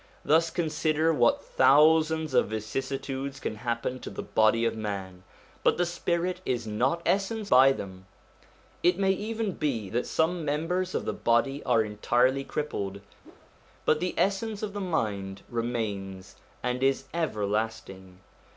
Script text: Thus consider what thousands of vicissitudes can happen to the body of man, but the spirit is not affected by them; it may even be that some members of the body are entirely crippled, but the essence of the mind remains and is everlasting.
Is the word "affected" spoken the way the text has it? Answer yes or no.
no